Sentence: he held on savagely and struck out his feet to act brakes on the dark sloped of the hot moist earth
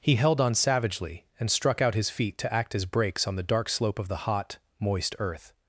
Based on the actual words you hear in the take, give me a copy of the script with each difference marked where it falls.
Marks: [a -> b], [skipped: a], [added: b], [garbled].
he held on savagely and struck out his feet to act [added: as] brakes on the dark [sloped -> slope] of the hot moist earth